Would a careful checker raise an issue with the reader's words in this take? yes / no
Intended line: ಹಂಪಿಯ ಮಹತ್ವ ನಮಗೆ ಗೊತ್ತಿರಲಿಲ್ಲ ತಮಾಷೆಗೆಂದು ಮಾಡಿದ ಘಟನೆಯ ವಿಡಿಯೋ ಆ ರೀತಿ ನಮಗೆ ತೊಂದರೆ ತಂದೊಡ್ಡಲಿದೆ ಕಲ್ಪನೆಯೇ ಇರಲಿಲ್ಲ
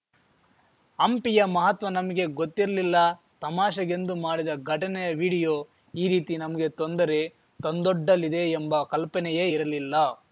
yes